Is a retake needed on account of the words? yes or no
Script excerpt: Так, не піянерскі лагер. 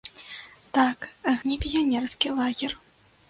no